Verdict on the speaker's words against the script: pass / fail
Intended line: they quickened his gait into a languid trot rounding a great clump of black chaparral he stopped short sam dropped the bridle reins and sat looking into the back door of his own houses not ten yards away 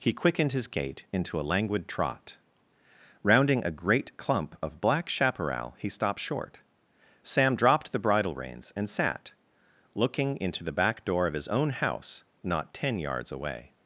fail